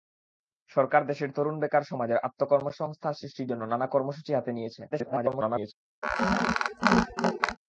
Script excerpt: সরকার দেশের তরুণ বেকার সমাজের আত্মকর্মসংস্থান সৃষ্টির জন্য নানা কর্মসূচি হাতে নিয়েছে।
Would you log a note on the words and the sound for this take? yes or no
yes